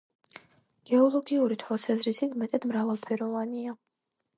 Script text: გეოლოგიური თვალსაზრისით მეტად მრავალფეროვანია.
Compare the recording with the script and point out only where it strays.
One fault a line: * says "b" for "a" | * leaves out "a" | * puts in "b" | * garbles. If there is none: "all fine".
all fine